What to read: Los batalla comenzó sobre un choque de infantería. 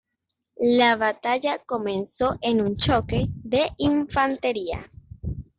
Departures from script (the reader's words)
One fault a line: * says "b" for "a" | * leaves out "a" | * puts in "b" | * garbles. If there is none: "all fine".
* says "La" for "Los"
* says "en" for "sobre"